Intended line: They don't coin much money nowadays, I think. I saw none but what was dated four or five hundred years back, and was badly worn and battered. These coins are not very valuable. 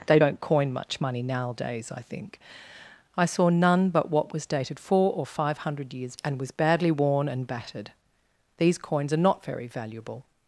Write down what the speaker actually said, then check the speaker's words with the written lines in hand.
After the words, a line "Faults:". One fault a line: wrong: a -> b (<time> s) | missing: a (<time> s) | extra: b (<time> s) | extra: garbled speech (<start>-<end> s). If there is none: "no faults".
They don't coin much money nowadays, I think. I saw none but what was dated four or five hundred years and was badly worn and battered. These coins are not very valuable.
Faults:
missing: back (6.1 s)